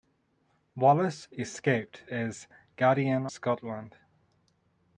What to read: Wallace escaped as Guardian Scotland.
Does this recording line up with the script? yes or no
yes